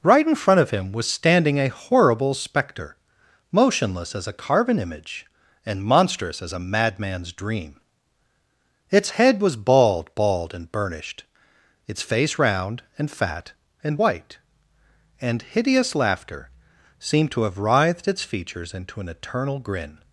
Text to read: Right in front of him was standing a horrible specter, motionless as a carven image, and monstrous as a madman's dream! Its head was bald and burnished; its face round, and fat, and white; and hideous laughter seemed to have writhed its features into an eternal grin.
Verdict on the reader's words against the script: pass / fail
fail